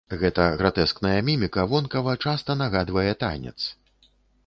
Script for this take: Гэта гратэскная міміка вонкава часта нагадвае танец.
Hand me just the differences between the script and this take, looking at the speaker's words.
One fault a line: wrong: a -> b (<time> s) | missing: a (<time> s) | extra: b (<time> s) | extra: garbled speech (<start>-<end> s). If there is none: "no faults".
no faults